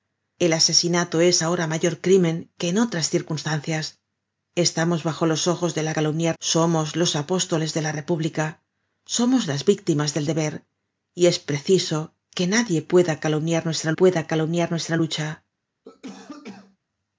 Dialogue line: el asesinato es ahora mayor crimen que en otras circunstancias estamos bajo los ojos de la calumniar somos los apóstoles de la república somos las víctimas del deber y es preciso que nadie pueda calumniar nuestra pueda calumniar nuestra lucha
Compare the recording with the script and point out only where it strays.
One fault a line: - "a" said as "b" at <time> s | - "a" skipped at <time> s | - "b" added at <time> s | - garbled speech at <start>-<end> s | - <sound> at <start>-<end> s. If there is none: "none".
- cough at 15.8-16.8 s